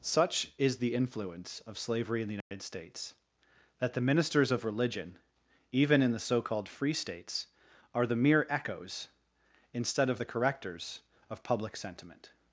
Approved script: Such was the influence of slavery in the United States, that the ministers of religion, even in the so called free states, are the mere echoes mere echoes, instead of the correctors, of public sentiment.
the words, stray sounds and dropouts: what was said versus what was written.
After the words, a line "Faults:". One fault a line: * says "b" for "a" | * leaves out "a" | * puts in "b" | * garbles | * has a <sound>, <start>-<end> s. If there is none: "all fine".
Such is the influence of slavery in the United States, that the ministers of religion, even in the so called free states, are the mere echoes, instead of the correctors, of public sentiment.
Faults:
* says "is" for "was"
* has a dropout, 2.4-2.5 s
* leaves out "mere echoes"